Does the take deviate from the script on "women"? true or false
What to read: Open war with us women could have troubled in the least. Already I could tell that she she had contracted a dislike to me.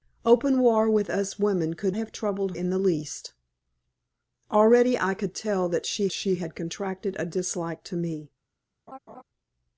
false